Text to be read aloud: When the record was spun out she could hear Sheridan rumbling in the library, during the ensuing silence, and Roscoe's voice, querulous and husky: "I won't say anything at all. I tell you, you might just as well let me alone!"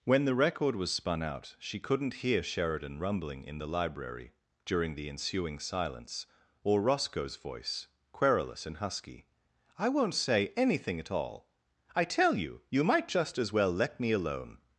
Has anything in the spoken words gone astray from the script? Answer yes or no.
yes